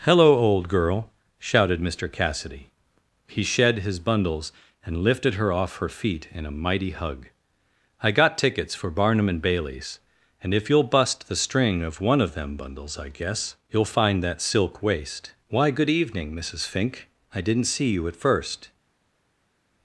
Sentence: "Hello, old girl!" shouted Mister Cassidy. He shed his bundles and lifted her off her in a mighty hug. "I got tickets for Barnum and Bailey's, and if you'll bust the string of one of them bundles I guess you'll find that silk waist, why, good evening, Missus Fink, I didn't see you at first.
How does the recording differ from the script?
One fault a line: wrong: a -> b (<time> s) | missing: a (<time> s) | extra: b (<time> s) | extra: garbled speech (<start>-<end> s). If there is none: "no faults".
extra: feet (5.9 s)